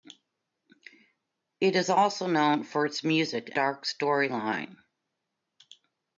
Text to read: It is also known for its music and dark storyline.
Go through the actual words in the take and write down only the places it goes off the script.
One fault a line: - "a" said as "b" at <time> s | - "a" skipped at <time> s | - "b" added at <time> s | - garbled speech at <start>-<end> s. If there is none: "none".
- "and" skipped at 3.5 s